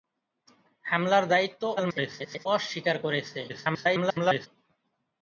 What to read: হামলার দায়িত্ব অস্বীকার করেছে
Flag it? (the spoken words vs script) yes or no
yes